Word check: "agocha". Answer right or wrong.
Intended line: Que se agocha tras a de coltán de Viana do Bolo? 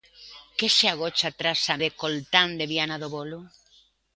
right